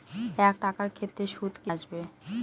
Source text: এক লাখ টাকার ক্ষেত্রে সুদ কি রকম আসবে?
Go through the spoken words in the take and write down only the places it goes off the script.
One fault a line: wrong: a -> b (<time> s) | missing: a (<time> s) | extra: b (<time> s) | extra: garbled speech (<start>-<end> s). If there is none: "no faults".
missing: লাখ (0.6 s)
missing: রকম (1.7 s)